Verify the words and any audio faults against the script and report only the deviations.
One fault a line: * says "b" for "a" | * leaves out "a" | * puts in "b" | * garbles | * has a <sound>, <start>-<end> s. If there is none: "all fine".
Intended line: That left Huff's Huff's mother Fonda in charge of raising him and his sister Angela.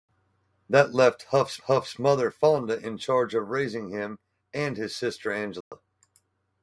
* has a dropout, 5.6-5.7 s